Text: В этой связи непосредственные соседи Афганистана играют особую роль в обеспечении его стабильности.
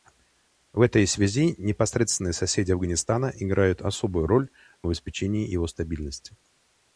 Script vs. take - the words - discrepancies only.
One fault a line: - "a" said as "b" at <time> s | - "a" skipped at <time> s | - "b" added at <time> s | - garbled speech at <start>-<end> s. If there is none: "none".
none